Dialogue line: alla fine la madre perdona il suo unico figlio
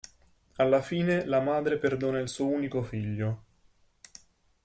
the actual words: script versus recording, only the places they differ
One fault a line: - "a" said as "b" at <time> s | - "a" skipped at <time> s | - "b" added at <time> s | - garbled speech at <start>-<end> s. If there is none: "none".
none